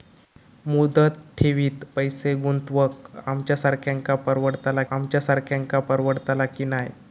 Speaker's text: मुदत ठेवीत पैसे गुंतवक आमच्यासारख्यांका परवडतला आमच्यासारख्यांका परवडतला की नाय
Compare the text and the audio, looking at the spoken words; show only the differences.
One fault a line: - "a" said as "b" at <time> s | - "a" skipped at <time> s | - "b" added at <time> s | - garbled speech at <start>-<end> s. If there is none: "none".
none